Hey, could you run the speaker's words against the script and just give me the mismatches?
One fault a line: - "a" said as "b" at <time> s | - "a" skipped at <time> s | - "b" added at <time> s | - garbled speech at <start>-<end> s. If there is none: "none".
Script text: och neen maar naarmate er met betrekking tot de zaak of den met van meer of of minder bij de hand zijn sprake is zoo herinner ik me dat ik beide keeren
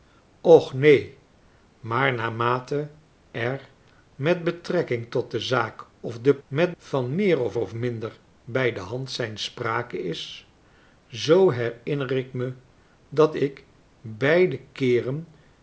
none